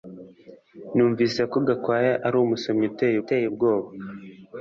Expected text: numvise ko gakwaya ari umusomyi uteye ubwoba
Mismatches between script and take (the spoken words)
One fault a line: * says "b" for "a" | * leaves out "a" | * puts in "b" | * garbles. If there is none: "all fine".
* puts in "uteye"